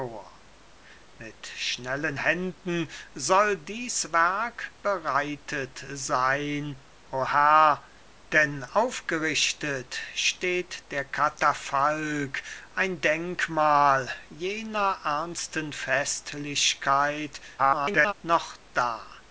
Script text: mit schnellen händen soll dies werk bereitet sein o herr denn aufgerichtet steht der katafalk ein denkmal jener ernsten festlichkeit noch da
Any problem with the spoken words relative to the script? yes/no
yes